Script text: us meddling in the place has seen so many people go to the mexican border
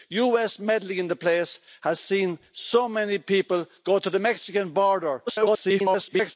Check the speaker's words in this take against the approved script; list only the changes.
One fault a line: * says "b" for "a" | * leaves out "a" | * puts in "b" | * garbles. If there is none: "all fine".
* garbles